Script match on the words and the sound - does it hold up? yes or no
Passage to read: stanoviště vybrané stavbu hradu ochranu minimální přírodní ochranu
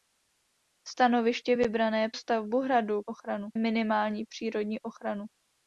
yes